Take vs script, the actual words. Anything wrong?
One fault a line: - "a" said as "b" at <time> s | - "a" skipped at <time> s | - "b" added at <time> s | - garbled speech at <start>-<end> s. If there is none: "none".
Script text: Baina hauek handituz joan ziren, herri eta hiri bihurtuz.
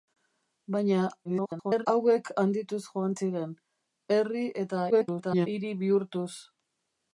- garbled speech at 1.2-1.9 s
- garbled speech at 4.9-5.5 s